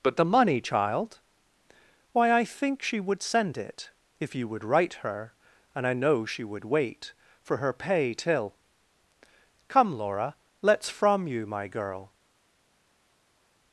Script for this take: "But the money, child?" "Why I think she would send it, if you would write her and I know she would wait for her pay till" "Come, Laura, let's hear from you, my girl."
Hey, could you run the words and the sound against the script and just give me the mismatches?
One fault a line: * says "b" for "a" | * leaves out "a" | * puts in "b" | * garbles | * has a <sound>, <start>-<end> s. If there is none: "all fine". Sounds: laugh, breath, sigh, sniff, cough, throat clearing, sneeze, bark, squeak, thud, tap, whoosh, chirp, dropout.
* leaves out "hear"